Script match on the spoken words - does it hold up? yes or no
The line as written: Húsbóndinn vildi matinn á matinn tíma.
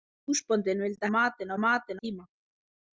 yes